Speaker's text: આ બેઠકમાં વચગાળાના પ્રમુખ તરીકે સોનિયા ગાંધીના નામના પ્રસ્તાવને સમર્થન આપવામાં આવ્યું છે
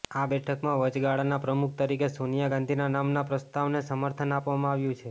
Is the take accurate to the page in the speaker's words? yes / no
yes